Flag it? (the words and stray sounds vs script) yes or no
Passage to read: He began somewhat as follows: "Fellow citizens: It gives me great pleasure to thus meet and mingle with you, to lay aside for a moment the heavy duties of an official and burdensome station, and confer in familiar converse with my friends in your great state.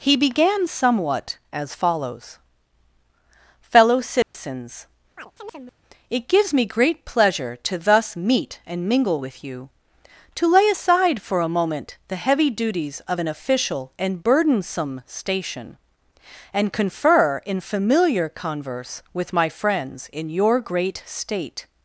yes